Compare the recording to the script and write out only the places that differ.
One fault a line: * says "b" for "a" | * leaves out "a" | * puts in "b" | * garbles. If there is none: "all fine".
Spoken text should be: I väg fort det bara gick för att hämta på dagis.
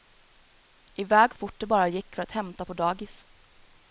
all fine